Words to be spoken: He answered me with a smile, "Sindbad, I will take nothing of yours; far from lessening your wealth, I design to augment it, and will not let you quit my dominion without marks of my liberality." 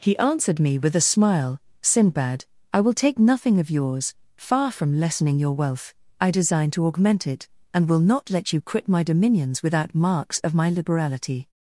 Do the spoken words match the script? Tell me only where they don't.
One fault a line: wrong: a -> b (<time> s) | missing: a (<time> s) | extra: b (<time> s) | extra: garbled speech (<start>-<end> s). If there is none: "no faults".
wrong: dominion -> dominions (9.0 s)